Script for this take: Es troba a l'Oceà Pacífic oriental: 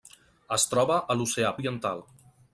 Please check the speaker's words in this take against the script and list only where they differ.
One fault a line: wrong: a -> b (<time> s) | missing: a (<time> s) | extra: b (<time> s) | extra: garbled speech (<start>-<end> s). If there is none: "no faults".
missing: Pacífic (1.5 s)